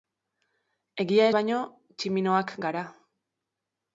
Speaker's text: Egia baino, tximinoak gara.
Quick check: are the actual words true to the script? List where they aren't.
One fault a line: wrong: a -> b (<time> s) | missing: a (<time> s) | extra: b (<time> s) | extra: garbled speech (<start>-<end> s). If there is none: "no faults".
no faults